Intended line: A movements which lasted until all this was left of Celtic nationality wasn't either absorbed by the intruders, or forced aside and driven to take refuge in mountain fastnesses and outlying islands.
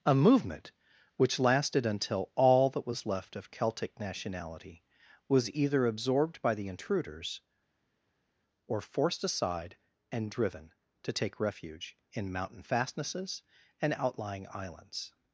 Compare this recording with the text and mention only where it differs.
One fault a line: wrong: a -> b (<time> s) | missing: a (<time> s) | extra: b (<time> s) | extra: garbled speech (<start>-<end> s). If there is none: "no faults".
wrong: movements -> movement (0.1 s)
wrong: this -> that (2.7 s)
wrong: wasn't -> was (5.3 s)